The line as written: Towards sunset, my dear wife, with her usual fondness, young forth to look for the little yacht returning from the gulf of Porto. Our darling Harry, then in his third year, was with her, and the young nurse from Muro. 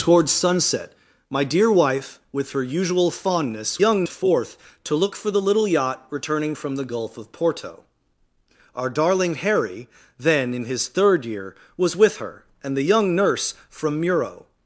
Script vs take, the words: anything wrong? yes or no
no